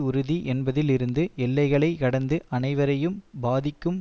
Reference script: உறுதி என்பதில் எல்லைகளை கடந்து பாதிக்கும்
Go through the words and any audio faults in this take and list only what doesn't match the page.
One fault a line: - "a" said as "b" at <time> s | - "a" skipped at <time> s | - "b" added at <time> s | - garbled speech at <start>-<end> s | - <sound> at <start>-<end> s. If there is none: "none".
- "இருந்து" added at 0.9 s
- "அனைவரையும்" added at 2.5 s